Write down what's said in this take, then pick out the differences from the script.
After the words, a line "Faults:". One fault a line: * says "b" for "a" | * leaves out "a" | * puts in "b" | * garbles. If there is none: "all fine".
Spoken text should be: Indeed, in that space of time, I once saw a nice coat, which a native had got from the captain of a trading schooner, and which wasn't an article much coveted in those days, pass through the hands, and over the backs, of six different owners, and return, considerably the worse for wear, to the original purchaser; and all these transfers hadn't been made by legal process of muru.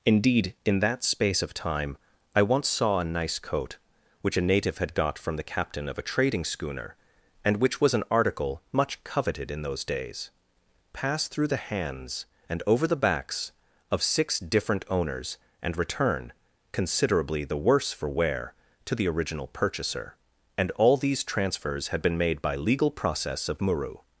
Indeed, in that space of time, I once saw a nice coat, which a native had got from the captain of a trading schooner, and which was an article much coveted in those days, pass through the hands, and over the backs, of six different owners, and return, considerably the worse for wear, to the original purchaser; and all these transfers had been made by legal process of muru.
Faults:
* says "was" for "wasn't"
* says "had" for "hadn't"